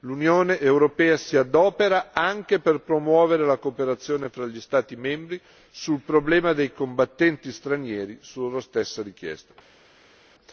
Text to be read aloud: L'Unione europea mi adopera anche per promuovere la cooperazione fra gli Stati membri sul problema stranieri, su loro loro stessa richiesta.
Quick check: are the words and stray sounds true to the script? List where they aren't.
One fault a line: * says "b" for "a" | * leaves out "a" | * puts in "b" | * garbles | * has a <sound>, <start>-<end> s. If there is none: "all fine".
* says "si" for "mi"
* puts in "dei combattenti"
* leaves out "loro"